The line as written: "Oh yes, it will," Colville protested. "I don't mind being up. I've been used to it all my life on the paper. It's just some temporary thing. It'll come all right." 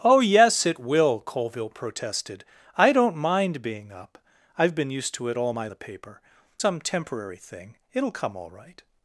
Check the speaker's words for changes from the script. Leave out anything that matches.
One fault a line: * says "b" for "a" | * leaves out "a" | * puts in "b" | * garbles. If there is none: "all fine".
* leaves out "life on"
* leaves out "It's just"